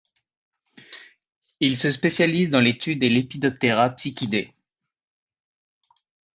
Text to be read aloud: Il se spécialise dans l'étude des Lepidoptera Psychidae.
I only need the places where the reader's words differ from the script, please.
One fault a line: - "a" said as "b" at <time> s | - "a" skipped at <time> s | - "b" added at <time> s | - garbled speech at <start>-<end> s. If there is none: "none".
none